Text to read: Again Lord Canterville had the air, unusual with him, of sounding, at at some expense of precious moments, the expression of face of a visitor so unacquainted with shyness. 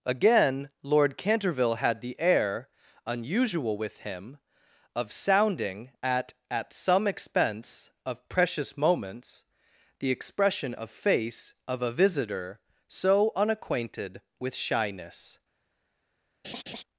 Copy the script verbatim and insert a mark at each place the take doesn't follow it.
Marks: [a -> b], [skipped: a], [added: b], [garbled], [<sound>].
Again Lord Canterville had the air, unusual with him, of sounding, at at some expense of precious moments, the expression of face of a visitor so unacquainted with shyness. [laugh]